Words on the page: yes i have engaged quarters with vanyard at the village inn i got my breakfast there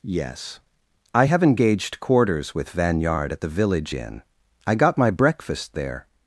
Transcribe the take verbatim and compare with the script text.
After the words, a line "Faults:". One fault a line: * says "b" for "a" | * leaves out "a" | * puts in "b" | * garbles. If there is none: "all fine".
yes i have engaged quarters with vanyard at the village inn i got my breakfast there
Faults:
all fine